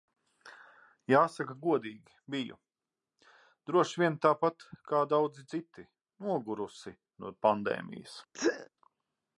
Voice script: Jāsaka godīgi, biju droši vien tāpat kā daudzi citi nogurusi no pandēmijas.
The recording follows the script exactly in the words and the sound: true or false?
false